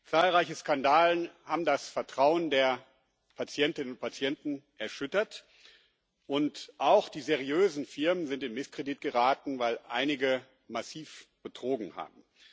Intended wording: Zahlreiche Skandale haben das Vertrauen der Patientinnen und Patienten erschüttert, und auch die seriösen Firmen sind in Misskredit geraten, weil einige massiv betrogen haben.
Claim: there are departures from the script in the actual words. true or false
false